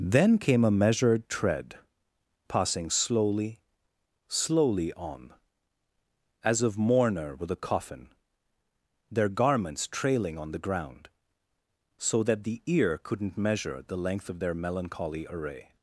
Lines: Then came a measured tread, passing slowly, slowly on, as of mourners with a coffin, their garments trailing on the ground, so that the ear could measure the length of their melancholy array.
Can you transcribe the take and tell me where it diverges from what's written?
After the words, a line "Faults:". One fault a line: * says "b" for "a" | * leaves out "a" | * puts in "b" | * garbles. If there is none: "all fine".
Then came a measured tread, passing slowly, slowly on, as of mourner with a coffin, their garments trailing on the ground, so that the ear couldn't measure the length of their melancholy array.
Faults:
* says "mourner" for "mourners"
* says "couldn't" for "could"